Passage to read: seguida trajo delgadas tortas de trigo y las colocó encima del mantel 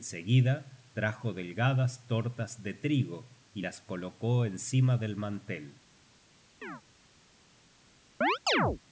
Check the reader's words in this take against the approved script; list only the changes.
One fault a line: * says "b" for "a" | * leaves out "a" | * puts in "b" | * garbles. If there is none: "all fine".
all fine